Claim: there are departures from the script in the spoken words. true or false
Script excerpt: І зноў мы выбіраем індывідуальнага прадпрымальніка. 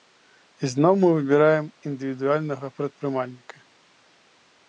false